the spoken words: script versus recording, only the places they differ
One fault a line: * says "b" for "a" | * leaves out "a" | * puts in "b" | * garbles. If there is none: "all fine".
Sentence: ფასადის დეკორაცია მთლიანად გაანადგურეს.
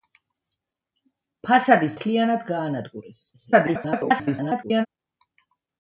* leaves out "დეკორაცია"
* garbles